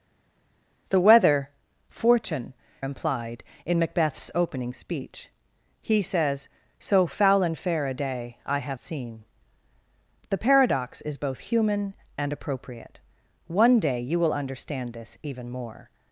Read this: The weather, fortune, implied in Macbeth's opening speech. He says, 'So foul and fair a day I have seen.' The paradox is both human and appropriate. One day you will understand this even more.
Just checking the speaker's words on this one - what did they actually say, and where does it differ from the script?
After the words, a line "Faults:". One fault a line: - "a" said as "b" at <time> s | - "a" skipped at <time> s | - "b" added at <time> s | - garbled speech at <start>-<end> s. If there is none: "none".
The weather, fortune, implied in Macbeth's opening speech. He says, 'So foul and fair a day I have seen.' The paradox is both human and appropriate. One day you will understand this even more.
Faults:
none